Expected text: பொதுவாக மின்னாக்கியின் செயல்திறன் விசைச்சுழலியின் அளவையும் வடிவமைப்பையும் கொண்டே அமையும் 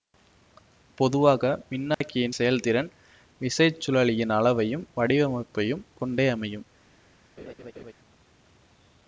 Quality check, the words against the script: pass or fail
pass